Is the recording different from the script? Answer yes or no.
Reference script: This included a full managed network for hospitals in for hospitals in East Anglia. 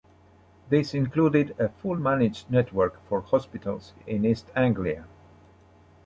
yes